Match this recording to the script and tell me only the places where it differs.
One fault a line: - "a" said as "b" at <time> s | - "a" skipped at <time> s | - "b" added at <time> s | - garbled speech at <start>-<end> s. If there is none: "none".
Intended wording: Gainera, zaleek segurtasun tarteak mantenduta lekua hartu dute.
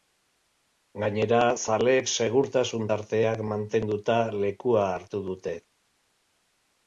none